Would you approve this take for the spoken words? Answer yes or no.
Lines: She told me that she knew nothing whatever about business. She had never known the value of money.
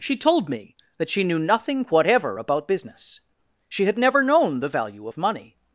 yes